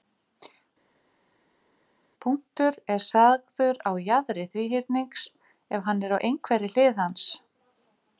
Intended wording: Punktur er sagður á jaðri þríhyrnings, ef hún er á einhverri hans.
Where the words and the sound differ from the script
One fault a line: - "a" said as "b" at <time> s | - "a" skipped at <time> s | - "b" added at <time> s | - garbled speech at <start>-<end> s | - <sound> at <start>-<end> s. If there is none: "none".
- "hún" said as "hann" at 5.9 s
- "hlið" added at 6.8 s